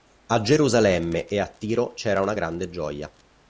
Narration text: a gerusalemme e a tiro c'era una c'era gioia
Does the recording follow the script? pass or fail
fail